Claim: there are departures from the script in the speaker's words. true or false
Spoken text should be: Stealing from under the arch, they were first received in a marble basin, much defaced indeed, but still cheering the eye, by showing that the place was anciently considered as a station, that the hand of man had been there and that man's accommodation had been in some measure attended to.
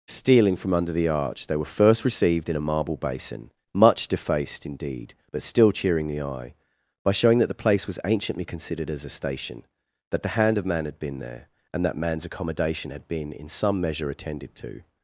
false